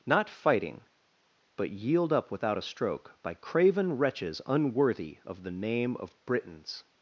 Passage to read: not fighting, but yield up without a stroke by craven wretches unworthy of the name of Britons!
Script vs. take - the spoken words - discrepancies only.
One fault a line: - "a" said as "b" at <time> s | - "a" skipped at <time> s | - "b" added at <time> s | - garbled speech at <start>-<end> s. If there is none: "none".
none